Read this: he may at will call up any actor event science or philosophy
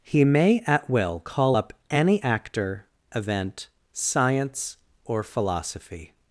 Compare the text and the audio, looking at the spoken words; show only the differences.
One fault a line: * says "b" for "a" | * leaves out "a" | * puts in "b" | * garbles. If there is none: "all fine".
all fine